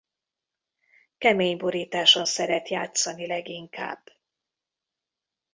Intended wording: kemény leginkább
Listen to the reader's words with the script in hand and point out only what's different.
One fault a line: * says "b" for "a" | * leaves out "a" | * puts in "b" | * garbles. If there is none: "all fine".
* puts in "borításon szeret játszani"